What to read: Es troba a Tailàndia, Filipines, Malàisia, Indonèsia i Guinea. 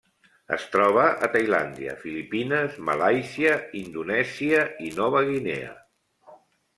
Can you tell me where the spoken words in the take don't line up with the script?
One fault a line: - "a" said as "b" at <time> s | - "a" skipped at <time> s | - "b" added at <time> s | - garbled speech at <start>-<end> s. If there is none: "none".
- "Nova" added at 5.0 s